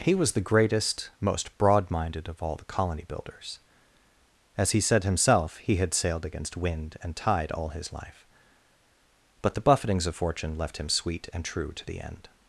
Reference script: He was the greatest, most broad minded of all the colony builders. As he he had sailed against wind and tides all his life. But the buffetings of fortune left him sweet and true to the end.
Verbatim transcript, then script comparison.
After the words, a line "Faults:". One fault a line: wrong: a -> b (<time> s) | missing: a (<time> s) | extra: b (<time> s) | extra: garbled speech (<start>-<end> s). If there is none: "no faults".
He was the greatest, most broad minded of all the colony builders. As he said himself he had sailed against wind and tide all his life. But the buffetings of fortune left him sweet and true to the end.
Faults:
extra: said himself (4.8 s)
wrong: tides -> tide (7.2 s)